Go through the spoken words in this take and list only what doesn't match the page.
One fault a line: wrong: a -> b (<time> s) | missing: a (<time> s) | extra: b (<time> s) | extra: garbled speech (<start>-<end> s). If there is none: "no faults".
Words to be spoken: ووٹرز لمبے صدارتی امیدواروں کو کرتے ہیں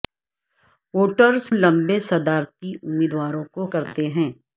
no faults